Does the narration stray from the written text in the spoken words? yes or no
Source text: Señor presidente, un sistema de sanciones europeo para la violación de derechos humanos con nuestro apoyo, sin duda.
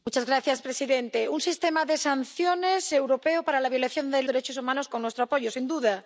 no